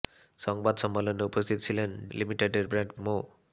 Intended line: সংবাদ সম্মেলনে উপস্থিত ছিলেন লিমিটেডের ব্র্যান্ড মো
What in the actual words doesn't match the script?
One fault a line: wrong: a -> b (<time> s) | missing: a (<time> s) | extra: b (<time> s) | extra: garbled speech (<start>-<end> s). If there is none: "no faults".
no faults